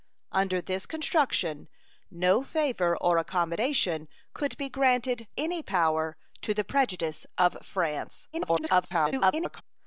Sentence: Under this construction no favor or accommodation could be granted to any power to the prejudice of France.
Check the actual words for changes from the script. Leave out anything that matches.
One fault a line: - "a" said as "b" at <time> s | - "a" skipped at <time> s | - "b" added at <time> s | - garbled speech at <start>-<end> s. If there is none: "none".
- "to" skipped at 5.3 s
- garbled speech at 8.3-9.6 s